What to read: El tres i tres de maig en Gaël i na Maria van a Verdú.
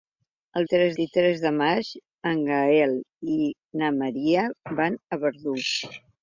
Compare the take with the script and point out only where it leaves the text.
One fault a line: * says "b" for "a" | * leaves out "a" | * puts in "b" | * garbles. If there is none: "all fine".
all fine